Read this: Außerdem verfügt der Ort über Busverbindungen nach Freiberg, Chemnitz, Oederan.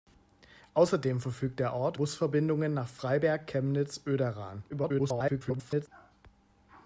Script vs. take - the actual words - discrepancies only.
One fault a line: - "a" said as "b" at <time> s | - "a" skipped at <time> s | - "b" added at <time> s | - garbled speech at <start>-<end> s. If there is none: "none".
- "über" skipped at 2.0 s
- garbled speech at 4.7-5.9 s